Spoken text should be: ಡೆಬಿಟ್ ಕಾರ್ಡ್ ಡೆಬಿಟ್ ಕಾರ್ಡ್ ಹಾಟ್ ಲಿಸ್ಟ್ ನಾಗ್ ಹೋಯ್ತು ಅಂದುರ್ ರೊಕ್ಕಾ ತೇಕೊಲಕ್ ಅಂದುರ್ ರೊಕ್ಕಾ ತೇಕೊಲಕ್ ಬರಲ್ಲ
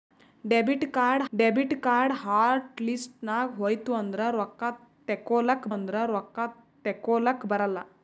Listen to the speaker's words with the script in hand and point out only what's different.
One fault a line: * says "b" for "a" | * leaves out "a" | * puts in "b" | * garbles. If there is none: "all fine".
all fine